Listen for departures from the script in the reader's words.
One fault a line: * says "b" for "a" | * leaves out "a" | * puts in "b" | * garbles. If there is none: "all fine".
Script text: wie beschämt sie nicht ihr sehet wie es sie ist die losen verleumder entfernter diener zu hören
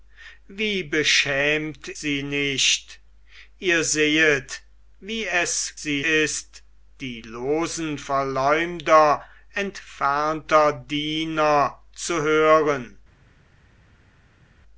all fine